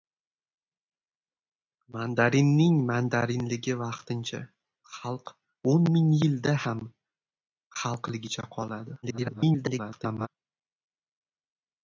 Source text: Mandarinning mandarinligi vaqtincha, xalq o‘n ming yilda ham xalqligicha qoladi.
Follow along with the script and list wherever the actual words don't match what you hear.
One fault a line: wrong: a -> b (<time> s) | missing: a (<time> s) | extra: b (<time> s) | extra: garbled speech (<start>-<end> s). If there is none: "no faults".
extra: garbled speech (9.0-10.3 s)